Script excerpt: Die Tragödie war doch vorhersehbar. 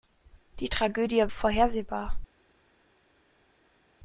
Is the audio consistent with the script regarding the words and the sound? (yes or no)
no